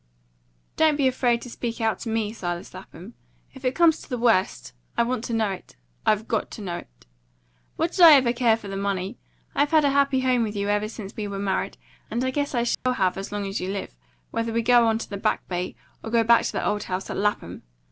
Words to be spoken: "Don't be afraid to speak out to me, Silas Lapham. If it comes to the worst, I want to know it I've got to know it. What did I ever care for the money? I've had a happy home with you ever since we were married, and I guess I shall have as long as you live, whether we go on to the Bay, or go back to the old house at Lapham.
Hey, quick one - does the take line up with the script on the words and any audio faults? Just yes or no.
no